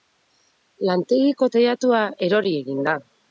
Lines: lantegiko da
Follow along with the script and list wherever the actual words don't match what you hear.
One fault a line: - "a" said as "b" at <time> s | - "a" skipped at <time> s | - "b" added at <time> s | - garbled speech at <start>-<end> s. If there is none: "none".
- "teilatua erori egin" added at 1.6 s